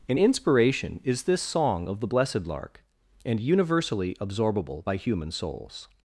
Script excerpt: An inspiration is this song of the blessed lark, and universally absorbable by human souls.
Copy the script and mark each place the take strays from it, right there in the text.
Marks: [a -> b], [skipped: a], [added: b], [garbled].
An inspiration is this song of the blessed lark, and universally absorbable by human souls.